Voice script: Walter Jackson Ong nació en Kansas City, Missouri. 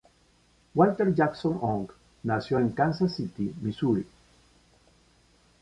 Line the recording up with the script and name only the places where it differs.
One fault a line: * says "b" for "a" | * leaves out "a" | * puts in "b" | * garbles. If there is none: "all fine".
all fine